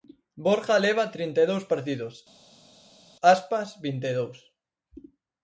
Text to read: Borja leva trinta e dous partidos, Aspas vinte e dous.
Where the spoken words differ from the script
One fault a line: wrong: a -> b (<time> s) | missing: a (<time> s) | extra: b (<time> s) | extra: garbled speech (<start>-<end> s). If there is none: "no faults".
no faults